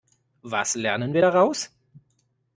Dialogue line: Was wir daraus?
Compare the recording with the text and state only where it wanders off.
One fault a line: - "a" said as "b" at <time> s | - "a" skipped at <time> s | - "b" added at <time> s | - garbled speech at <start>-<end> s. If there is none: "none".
- "lernen" added at 0.7 s